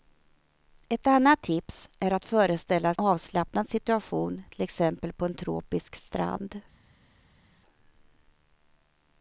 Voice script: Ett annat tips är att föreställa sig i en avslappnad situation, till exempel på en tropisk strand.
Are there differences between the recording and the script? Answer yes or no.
yes